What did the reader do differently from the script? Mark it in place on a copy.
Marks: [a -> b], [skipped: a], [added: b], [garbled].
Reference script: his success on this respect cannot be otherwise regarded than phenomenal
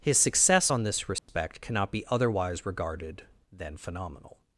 his success on this respect cannot be otherwise regarded than phenomenal